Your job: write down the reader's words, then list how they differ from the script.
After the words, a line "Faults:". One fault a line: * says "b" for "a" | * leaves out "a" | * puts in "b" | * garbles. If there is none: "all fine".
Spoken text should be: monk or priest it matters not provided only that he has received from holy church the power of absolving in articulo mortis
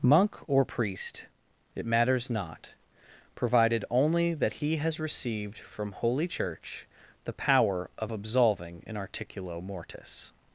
monk or priest it matters not provided only that he has received from holy church the power of absolving in articulo mortis
Faults:
all fine